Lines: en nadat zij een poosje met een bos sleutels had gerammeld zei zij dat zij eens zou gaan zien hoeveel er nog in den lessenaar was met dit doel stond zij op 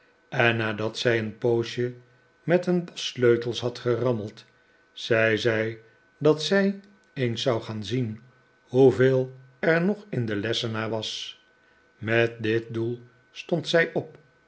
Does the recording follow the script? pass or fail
pass